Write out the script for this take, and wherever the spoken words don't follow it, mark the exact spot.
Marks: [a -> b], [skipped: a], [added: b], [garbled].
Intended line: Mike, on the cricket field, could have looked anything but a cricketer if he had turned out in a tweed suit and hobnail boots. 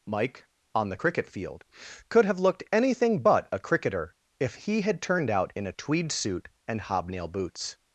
Mike, on the cricket field, could have looked anything but a cricketer if he had turned out in a tweed suit and hobnail boots.